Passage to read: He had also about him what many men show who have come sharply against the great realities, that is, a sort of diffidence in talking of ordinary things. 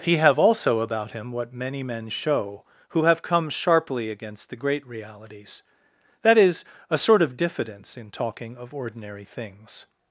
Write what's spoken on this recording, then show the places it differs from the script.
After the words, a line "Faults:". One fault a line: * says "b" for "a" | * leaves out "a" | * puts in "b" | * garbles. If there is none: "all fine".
He have also about him what many men show who have come sharply against the great realities, that is, a sort of diffidence in talking of ordinary things.
Faults:
* says "have" for "had"